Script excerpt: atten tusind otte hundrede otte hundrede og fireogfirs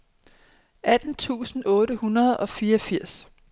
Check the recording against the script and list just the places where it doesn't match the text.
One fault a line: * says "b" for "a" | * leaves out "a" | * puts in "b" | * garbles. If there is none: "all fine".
* leaves out "otte hundrede"